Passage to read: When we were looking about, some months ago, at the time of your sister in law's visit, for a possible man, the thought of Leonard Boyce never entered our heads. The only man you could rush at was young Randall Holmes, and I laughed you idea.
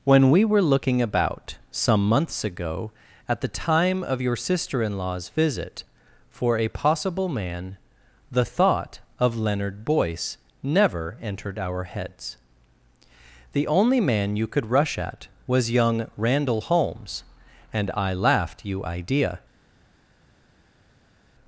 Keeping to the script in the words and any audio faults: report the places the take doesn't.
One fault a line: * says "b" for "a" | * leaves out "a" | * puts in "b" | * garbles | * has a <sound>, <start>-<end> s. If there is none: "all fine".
all fine